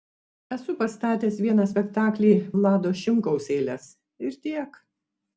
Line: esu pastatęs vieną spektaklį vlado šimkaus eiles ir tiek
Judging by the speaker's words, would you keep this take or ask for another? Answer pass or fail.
pass